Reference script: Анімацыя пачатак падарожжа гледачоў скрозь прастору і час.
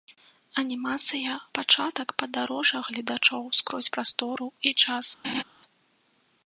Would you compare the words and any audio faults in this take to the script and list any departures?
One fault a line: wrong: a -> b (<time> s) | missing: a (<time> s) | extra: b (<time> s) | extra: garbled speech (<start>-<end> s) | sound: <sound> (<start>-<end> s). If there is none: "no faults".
sound: laugh (5.2-5.4 s)